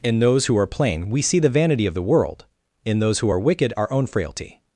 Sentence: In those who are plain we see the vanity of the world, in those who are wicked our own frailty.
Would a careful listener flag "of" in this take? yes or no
no